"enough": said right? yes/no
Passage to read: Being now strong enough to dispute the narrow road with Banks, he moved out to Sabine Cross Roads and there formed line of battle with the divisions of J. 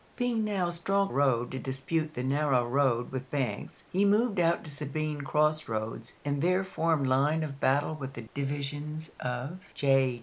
no